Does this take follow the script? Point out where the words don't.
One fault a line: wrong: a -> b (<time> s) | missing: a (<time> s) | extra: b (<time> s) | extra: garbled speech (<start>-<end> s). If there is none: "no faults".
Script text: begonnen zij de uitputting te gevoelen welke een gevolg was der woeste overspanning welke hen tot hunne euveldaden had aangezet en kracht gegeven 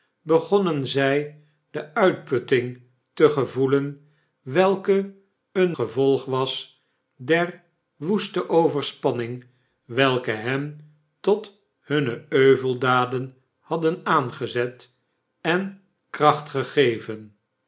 no faults